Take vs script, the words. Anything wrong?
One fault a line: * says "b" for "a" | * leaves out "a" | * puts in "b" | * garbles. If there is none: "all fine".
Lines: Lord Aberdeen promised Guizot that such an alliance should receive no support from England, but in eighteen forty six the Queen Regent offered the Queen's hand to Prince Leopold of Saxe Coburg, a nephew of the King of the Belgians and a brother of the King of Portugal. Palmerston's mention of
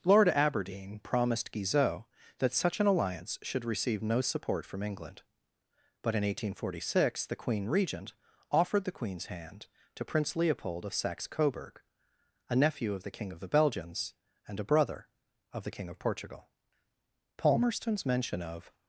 all fine